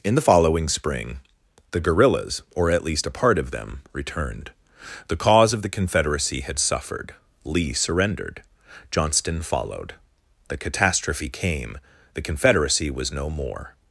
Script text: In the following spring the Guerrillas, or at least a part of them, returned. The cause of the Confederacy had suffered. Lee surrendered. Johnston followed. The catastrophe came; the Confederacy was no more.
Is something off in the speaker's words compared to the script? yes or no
no